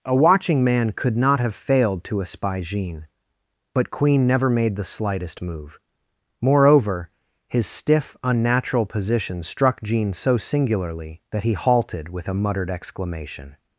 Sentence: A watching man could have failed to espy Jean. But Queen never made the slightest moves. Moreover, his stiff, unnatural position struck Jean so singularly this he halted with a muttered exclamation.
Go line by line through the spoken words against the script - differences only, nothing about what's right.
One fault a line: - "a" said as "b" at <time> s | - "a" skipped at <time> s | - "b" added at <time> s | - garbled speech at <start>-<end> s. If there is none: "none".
- "not" added at 1.1 s
- "moves" said as "move" at 5.4 s
- "this" said as "that" at 11.3 s